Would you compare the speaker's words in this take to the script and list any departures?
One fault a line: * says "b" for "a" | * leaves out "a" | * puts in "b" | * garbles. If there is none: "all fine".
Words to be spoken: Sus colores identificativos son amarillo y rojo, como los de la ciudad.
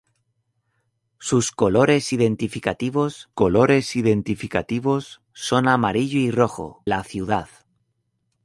* puts in "colores identificativos"
* leaves out "como los de"